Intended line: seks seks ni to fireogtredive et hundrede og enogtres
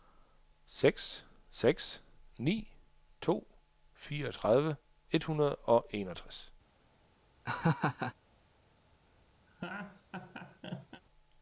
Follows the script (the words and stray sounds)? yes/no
no